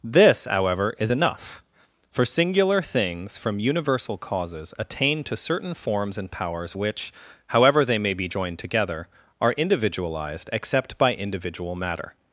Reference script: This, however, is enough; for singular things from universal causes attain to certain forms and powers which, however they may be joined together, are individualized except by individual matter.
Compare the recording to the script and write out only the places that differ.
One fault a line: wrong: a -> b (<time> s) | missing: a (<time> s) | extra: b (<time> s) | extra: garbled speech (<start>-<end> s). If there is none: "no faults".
no faults